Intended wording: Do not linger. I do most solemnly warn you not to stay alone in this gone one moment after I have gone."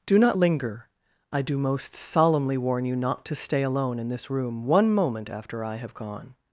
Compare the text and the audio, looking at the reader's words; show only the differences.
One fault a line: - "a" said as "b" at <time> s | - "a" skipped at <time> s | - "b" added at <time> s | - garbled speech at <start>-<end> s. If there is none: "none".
- "gone" said as "room" at 4.3 s